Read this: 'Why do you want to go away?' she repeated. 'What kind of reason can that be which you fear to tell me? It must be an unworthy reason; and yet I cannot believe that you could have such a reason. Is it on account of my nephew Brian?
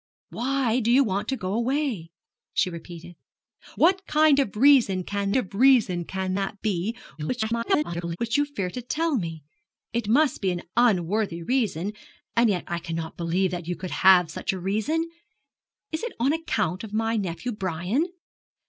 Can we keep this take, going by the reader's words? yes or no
no